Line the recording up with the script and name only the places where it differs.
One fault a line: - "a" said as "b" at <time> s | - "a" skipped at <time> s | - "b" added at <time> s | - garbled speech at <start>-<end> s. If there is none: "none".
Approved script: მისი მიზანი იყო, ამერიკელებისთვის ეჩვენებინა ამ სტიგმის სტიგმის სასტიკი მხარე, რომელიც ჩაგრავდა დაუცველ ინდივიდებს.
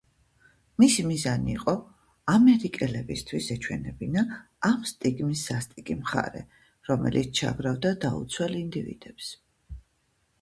- "სტიგმის" skipped at 5.4 s